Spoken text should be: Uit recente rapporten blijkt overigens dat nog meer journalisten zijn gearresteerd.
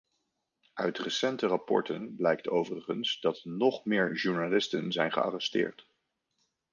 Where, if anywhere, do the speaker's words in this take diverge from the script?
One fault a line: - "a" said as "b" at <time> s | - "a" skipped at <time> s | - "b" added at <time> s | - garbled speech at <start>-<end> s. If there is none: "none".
none